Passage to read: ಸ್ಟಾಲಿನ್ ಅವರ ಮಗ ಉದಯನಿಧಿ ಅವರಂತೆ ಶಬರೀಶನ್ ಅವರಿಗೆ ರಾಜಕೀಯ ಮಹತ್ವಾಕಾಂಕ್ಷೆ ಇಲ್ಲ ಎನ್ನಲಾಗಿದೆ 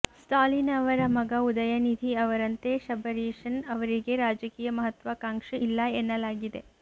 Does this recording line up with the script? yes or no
yes